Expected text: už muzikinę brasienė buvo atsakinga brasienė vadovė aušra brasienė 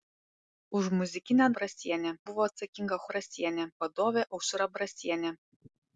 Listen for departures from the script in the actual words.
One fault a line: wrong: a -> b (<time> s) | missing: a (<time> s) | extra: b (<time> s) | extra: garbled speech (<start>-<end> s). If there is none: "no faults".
no faults